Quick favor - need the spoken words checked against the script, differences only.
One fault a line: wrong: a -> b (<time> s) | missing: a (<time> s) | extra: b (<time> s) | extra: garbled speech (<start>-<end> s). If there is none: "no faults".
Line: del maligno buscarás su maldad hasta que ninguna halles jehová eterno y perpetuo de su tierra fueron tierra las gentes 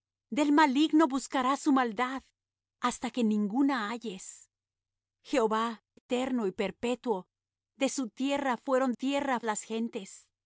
no faults